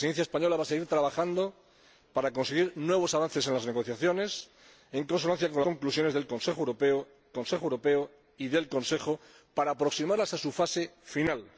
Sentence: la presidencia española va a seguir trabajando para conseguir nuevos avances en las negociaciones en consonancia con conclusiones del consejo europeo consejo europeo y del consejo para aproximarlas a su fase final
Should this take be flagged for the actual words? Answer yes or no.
no